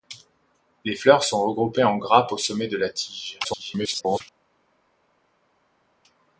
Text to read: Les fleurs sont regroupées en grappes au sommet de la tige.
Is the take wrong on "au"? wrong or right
right